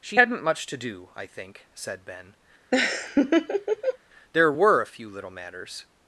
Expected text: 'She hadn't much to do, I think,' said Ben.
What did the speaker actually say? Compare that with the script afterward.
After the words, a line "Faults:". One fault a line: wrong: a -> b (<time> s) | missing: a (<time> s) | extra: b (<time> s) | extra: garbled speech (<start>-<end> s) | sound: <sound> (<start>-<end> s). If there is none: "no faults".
'She hadn't much to do, I think,' said Ben. 'There were a few little matters
Faults:
sound: laugh (2.7-4.0 s)
extra: There were a few little matters (4.3 s)